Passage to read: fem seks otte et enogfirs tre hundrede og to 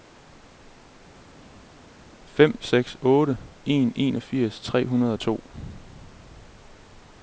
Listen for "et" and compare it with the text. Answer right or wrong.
wrong